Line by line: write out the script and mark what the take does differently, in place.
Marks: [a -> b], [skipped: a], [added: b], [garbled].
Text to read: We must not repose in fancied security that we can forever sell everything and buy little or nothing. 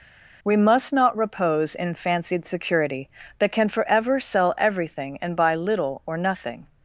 We must not repose in fancied security that [skipped: we] can forever sell everything and buy little or nothing.